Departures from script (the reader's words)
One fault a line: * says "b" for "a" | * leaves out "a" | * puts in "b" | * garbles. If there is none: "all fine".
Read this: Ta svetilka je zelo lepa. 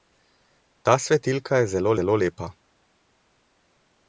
* puts in "zelo"